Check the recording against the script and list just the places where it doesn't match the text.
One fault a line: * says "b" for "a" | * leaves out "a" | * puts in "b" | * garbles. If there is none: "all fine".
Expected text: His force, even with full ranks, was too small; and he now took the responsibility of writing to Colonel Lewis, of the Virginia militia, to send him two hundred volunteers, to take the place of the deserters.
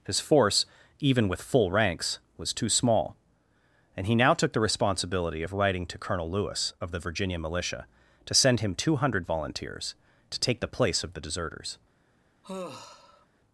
all fine